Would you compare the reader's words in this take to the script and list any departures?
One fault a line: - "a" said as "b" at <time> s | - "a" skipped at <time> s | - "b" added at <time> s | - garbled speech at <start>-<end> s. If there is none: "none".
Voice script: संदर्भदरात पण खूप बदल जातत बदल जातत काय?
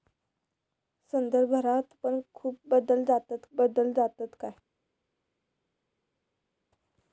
none